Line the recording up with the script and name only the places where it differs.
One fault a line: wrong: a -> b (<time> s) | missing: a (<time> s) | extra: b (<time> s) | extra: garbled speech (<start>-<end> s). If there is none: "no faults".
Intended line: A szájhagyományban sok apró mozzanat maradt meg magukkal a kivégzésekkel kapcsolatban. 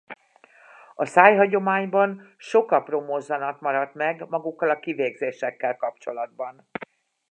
no faults